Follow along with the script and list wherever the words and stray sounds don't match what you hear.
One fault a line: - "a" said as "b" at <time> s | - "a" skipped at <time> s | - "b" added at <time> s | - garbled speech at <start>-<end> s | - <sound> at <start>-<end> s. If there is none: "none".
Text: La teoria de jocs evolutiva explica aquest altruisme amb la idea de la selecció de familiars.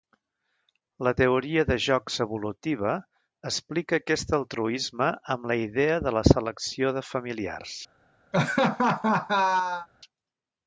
- laugh at 8.3-9.9 s